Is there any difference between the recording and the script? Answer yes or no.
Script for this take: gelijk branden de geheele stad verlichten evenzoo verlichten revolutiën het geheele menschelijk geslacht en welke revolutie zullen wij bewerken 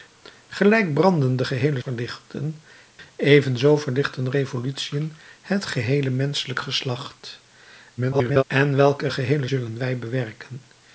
yes